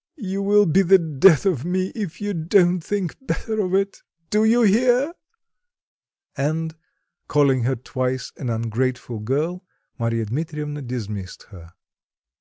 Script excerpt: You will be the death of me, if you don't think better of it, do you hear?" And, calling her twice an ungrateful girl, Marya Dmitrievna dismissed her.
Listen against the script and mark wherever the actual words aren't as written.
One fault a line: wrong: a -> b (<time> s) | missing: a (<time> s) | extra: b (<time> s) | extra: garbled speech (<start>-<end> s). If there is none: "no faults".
no faults